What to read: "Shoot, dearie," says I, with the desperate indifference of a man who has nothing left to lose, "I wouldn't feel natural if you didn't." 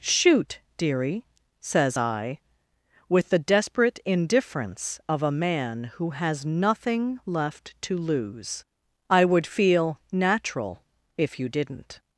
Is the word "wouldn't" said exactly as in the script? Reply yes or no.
no